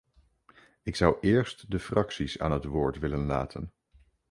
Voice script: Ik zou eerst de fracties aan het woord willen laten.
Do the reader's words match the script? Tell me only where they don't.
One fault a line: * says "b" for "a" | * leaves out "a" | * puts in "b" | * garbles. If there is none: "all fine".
all fine